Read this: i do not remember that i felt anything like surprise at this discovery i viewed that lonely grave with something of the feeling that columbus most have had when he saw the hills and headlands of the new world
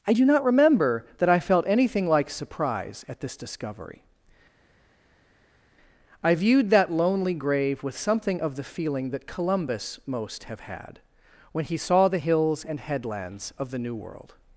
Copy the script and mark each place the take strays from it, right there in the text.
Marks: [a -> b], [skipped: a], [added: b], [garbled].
i do not remember that i felt anything like surprise at this discovery i viewed that lonely grave with something of the feeling that columbus most have had when he saw the hills and headlands of the new world